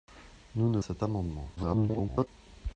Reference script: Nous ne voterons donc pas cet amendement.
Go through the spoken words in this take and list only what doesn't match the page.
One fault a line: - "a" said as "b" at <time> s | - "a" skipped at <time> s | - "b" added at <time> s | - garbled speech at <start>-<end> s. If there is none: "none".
- "voterons donc pas" skipped at 0.8 s
- garbled speech at 1.6-2.3 s